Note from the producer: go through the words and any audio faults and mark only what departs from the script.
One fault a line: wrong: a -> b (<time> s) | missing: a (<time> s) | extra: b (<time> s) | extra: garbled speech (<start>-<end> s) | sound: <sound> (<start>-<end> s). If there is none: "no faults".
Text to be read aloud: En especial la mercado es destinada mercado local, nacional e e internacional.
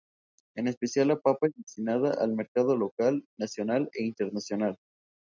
wrong: mercado -> papa (1.2 s)
extra: al (2.2 s)
missing: e (4.0 s)